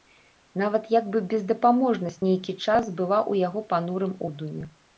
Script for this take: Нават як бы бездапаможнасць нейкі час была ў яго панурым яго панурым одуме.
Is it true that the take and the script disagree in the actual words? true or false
true